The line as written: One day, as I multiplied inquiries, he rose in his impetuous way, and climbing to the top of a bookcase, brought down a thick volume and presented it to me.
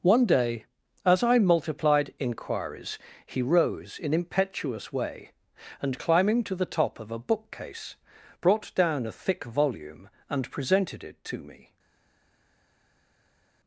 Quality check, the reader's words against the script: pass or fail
fail